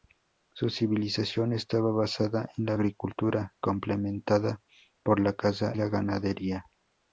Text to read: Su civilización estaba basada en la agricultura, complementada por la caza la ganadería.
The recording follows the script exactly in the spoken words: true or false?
true